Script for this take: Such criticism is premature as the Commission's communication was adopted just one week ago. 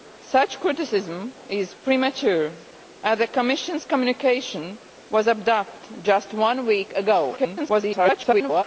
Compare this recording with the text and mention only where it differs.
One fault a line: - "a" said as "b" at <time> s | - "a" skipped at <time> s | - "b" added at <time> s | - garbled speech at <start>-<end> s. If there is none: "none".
- garbled speech at 7.4-8.6 s